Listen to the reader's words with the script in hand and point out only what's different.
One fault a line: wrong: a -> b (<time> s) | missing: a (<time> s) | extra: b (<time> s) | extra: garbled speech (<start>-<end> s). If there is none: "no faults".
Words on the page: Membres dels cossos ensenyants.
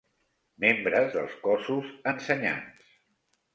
no faults